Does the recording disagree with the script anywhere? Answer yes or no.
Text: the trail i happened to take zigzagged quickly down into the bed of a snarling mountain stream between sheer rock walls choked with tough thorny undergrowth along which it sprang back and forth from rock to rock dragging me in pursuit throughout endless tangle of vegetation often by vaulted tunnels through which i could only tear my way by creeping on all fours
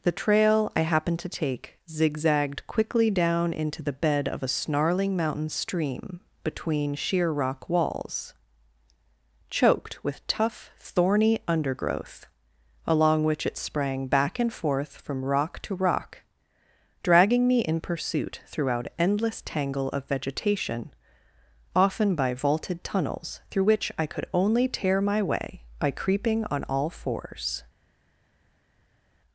no